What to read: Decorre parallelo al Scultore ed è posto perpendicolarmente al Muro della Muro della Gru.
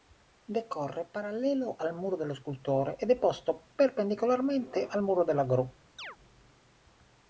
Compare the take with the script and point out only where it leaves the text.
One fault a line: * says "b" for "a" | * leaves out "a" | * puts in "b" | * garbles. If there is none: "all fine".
* puts in "Muro dello"
* leaves out "Muro della"